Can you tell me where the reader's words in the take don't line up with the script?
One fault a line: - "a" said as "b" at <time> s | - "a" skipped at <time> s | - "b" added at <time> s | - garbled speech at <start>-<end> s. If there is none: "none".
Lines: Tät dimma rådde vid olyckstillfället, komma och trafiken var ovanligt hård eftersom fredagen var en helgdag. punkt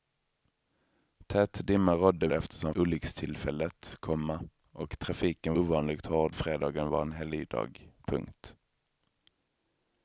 - "vid" said as "eftersom" at 2.3 s
- "var" skipped at 5.6 s
- "eftersom" skipped at 6.4 s